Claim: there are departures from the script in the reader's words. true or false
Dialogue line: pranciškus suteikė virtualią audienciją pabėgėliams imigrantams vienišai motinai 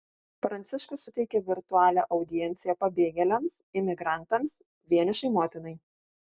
false